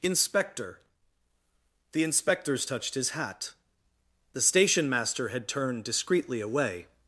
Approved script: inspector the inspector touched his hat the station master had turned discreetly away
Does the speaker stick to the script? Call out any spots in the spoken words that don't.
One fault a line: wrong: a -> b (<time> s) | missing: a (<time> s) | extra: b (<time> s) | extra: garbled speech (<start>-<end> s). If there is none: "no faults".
wrong: inspector -> inspectors (2.0 s)